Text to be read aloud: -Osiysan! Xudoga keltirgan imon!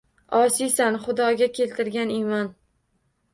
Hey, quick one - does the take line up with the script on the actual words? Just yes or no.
yes